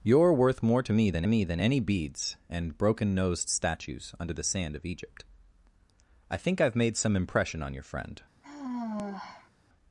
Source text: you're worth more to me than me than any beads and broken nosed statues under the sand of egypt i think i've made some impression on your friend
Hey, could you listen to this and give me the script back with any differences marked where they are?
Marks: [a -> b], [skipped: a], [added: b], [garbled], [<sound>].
you're worth more to me than me than any beads and broken nosed statues under the sand of egypt i think i've made some impression on your friend [sigh]